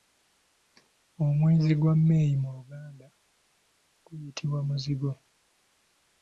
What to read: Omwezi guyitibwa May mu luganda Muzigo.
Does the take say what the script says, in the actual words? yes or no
no